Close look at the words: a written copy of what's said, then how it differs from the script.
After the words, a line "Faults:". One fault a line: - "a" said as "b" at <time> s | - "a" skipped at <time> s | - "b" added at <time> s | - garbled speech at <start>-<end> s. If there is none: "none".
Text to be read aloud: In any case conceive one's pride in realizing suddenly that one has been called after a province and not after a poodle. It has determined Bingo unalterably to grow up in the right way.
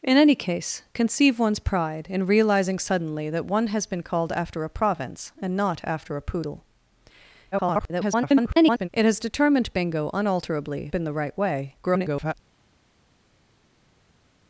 In any case conceive one's pride in realizing suddenly that one has been called after a province and not after a poodle. [garbled] It has determined Bingo unalterably in the right way. [garbled]
Faults:
- garbled speech at 7.5-8.9 s
- "to grow up" skipped at 10.9 s
- garbled speech at 11.8-12.3 s